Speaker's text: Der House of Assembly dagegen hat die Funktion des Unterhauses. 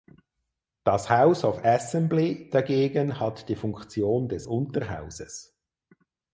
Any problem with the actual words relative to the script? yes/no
yes